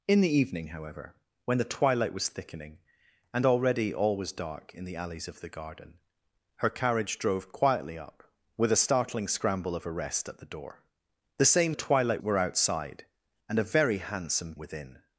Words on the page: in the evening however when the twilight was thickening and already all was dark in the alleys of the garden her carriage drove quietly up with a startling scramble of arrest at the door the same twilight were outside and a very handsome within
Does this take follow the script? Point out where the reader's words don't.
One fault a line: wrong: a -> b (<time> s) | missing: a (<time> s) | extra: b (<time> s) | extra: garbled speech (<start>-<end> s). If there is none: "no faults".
no faults